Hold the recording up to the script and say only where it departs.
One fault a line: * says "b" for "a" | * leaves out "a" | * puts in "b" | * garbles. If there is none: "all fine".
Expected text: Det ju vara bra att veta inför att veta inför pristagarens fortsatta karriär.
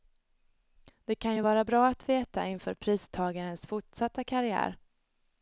* puts in "kan"
* leaves out "att veta inför"